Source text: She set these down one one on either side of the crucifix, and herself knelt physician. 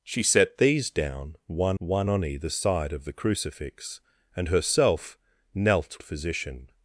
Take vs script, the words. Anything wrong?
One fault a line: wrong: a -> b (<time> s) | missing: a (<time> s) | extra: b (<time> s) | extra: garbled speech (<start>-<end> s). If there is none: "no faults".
no faults